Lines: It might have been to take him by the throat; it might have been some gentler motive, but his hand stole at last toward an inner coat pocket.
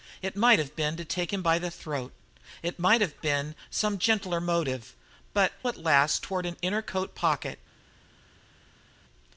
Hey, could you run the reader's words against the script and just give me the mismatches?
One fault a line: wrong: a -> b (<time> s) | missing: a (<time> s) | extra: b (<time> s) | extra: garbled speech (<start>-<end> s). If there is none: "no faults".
missing: his hand stole (5.5 s)